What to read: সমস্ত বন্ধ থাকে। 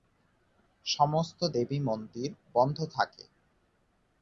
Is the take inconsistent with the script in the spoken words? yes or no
yes